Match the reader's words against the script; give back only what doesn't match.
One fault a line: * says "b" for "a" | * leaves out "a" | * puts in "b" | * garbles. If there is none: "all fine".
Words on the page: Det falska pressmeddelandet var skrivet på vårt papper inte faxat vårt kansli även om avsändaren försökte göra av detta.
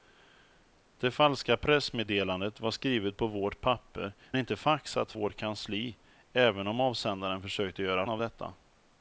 all fine